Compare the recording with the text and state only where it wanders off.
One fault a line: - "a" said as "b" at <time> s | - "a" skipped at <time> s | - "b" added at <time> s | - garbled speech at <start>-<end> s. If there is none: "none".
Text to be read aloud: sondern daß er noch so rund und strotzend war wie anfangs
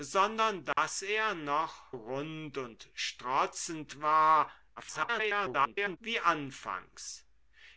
- "so" skipped at 1.8 s
- garbled speech at 4.8-6.0 s